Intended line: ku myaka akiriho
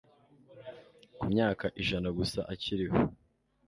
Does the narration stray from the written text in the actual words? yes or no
yes